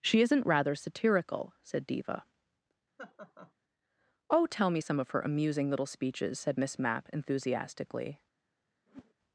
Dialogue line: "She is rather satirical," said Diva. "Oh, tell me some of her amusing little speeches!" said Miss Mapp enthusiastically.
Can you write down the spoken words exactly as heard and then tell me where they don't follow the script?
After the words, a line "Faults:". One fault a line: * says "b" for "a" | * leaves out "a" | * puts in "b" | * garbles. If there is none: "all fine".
"She isn't rather satirical," said Diva. "Oh, tell me some of her amusing little speeches!" said Miss Mapp enthusiastically.
Faults:
* says "isn't" for "is"